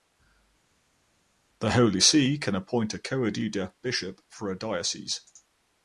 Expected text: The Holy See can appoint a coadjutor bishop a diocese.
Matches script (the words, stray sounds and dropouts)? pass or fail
fail